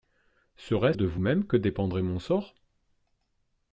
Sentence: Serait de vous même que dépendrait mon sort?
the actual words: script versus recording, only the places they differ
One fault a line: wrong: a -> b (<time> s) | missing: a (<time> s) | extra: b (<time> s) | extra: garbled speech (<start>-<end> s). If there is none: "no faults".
no faults